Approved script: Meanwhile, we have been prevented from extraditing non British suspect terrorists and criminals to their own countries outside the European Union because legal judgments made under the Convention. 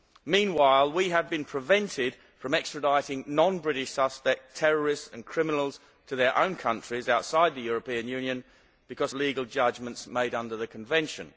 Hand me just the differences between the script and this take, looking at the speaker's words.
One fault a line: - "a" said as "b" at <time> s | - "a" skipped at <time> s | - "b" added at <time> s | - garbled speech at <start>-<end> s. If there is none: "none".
none